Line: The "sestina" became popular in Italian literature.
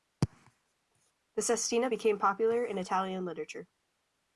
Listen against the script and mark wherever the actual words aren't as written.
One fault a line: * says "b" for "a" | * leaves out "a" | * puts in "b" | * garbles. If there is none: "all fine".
all fine